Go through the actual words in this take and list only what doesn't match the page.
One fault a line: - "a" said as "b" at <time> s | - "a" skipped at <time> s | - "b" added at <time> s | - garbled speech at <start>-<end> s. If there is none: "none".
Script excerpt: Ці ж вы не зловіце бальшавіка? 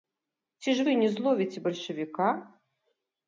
none